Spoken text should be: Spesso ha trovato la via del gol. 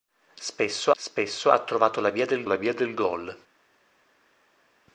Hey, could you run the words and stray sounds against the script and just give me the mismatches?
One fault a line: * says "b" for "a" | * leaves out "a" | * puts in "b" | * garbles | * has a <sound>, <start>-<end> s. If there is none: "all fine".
* puts in "spesso"
* puts in "la via del"